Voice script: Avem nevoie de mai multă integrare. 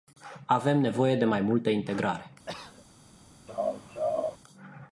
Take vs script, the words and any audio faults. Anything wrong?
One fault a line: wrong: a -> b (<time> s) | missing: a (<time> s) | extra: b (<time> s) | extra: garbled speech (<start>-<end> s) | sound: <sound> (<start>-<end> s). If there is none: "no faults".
sound: cough (2.5-2.9 s)
sound: laugh (3.5-4.4 s)